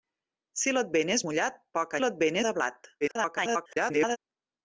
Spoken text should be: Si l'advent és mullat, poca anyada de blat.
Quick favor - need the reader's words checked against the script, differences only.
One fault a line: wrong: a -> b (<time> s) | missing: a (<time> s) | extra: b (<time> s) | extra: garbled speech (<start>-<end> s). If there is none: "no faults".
wrong: anyada -> l'advent (2.0 s)
extra: garbled speech (3.0-4.2 s)